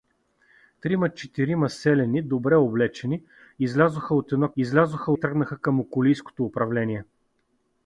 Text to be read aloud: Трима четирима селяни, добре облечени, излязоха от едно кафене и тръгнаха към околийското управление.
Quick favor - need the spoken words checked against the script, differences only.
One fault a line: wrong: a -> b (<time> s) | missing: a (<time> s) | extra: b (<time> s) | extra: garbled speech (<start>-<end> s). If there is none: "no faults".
wrong: кафене -> излязоха (4.6 s)